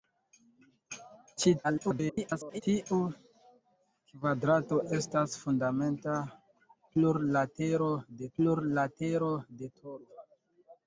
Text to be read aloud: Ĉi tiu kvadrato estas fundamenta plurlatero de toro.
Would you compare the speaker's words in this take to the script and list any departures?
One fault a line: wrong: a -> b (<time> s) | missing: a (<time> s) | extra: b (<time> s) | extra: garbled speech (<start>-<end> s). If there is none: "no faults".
extra: garbled speech (1.6-2.6 s)
extra: plurlatero de (8.4 s)